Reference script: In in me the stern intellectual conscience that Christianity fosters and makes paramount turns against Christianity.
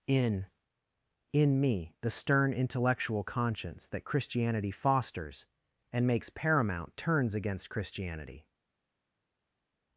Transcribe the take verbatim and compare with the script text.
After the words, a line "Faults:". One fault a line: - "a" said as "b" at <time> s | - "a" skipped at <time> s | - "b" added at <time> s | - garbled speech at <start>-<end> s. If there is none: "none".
In in me the stern intellectual conscience that Christianity fosters and makes paramount turns against Christianity.
Faults:
none